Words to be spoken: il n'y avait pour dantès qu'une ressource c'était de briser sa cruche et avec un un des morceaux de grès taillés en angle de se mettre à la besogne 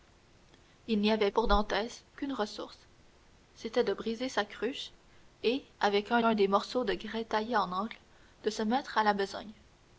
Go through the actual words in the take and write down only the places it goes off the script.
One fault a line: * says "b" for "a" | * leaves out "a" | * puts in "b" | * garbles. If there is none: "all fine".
all fine